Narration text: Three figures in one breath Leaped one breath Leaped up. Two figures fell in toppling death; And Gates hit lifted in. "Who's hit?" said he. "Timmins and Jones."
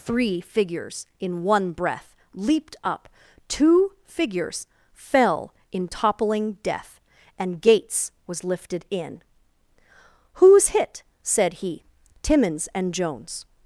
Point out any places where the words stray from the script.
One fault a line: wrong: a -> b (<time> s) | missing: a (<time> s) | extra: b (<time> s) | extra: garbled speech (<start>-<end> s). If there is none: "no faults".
missing: one breath Leaped (2.8 s)
wrong: hit -> was (8.2 s)